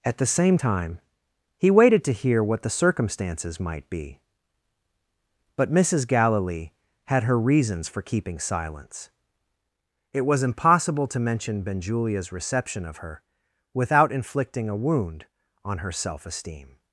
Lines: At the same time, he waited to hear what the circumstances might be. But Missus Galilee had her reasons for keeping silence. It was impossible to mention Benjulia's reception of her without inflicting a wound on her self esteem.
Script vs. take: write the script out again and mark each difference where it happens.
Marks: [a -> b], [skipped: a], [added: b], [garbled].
At the same time, he waited to hear what the circumstances might be. But Missus Galilee had her reasons for keeping silence. It was impossible to mention Benjulia's reception of her without inflicting a wound on her self esteem.